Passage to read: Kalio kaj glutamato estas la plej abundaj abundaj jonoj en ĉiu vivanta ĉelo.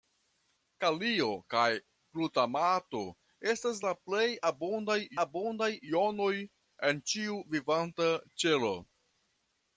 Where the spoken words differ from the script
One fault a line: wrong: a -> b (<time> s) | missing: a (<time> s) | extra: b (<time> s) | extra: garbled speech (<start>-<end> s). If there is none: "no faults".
no faults